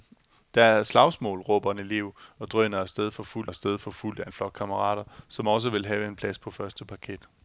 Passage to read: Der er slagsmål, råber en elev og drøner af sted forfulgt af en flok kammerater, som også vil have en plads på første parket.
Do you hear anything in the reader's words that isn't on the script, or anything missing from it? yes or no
yes